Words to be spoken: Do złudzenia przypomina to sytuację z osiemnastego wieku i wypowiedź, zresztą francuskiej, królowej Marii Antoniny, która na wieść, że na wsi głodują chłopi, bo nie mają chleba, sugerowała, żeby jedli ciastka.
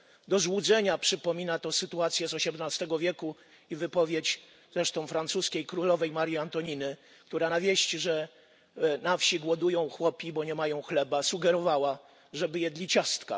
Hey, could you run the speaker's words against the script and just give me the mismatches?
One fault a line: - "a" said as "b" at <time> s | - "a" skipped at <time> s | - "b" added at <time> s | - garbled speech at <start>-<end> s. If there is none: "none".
none